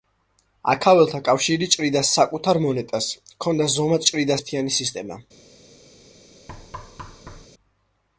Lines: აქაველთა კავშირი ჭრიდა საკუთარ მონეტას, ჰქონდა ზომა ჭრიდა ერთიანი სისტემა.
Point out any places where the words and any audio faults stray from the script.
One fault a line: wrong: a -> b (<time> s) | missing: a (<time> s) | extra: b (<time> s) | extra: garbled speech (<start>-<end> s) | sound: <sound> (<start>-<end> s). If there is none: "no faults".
sound: thud (6.5-7.5 s)